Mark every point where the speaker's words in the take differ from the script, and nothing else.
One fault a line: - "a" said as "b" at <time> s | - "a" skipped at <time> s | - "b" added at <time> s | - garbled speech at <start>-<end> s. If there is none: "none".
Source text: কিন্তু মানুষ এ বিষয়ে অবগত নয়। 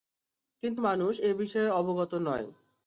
none